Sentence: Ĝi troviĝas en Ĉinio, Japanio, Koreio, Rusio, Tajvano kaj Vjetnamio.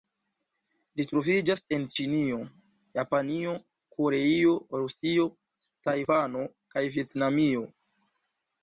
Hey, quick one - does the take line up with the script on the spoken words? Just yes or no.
yes